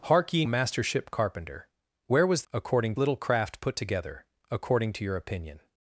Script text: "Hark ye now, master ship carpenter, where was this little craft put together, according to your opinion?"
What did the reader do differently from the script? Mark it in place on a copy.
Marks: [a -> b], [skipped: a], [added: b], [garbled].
"Hark ye [skipped: now,] master ship carpenter, where was [this -> according] little craft put together, according to your opinion?"